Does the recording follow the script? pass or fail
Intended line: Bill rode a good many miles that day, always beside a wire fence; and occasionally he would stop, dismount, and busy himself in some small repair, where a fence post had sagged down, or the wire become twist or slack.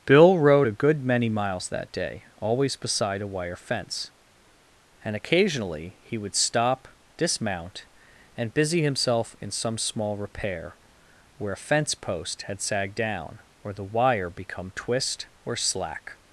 pass